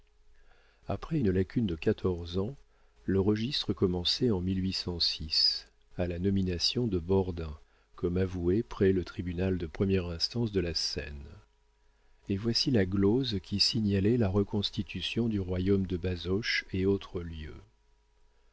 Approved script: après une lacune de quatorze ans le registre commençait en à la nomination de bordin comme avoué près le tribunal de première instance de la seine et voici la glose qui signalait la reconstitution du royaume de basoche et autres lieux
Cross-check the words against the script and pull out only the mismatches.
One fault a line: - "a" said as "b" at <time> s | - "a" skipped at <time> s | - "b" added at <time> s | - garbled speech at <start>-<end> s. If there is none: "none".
none